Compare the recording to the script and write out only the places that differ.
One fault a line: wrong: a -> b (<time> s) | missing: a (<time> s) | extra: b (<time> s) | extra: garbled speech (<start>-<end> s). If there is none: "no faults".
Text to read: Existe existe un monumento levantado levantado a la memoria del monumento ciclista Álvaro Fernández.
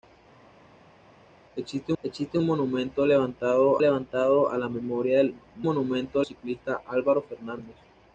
no faults